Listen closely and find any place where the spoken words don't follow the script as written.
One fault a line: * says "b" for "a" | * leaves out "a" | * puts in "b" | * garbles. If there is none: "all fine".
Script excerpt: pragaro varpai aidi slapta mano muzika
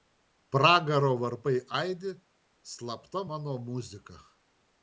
all fine